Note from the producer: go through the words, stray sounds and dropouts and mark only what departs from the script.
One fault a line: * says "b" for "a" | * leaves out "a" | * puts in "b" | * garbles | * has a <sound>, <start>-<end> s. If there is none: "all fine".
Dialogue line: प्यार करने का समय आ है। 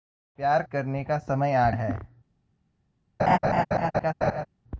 * has a laugh, 3.2-4.5 s